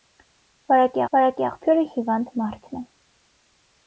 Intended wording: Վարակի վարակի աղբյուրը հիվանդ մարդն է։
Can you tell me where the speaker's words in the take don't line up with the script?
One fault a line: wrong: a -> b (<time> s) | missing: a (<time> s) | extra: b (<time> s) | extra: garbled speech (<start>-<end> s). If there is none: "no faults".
no faults